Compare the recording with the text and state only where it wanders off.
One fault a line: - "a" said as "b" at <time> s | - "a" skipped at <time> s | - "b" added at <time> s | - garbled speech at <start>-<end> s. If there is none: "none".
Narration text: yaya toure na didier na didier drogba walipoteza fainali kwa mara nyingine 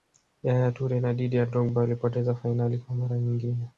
- "na didier" skipped at 1.5 s